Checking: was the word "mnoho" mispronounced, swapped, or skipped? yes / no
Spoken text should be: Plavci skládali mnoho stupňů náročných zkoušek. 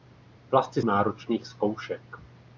yes